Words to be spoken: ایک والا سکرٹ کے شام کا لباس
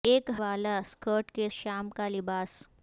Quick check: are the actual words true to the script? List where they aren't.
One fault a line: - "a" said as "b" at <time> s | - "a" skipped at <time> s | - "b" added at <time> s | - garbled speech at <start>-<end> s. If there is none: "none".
none